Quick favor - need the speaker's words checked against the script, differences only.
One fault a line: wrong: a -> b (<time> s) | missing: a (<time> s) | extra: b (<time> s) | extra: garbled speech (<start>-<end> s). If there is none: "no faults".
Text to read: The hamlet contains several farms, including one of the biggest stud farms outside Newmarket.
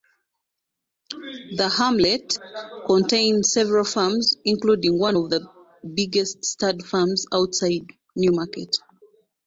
no faults